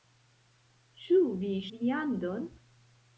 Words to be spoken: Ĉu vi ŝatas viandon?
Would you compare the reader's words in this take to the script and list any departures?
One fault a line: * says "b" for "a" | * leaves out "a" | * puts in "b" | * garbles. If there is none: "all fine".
* leaves out "ŝatas"